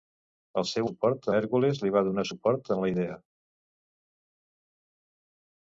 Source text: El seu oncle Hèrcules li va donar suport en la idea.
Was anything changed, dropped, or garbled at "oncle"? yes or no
yes